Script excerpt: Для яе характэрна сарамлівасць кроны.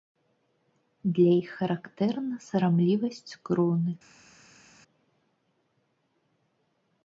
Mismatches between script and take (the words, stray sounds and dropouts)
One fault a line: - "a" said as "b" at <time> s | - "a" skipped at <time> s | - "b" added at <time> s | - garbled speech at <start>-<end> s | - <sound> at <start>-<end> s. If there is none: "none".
- "яе" said as "іх" at 1.4 s